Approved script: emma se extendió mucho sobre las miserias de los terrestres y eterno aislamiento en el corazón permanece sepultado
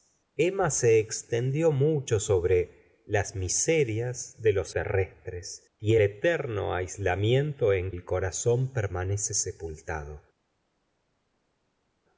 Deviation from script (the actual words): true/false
false